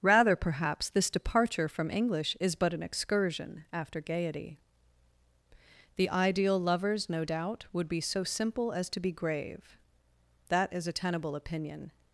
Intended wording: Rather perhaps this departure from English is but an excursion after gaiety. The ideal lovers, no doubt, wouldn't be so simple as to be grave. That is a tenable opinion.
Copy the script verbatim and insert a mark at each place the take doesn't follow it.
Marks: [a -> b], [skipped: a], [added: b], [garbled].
Rather perhaps this departure from English is but an excursion after gaiety. The ideal lovers, no doubt, [wouldn't -> would] be so simple as to be grave. That is a tenable opinion.